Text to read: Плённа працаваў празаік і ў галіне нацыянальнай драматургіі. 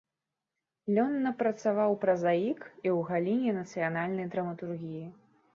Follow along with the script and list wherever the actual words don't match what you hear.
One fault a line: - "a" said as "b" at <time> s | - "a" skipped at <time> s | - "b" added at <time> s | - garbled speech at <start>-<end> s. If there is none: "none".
none